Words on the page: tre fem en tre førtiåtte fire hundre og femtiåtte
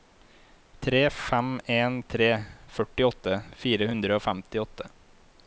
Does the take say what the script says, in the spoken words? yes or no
yes